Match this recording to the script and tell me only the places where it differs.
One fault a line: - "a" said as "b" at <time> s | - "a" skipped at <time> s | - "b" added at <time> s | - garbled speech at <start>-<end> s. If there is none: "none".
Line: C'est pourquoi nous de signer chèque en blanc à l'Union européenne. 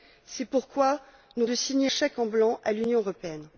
none